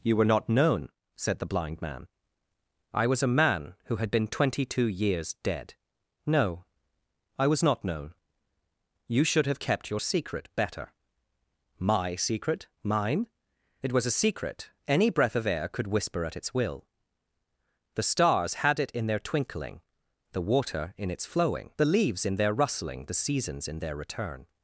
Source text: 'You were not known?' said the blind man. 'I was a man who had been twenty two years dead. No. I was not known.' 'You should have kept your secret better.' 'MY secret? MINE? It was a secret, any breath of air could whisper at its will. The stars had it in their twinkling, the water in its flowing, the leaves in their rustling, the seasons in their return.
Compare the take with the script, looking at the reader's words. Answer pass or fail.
pass